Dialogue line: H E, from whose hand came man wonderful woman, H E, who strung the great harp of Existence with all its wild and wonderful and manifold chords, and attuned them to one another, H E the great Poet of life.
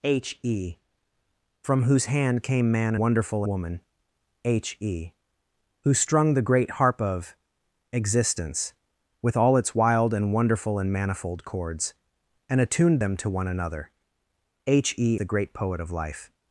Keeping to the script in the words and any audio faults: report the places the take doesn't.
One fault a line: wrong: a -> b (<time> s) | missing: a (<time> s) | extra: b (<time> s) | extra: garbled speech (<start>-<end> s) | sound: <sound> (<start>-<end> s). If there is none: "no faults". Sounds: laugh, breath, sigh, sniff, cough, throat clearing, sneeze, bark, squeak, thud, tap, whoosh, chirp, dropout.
no faults